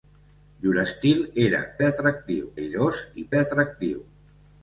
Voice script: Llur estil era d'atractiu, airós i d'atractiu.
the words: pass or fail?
pass